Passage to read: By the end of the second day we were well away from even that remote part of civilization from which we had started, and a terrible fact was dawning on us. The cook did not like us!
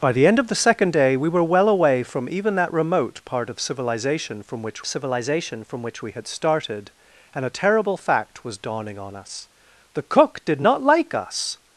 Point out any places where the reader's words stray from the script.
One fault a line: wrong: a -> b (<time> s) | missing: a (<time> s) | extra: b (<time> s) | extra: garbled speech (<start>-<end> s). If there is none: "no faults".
extra: civilization from which (4.8 s)